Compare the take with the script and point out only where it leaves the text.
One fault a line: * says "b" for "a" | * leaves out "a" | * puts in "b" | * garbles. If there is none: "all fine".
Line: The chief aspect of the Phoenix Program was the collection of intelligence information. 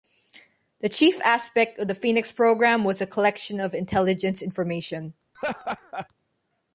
all fine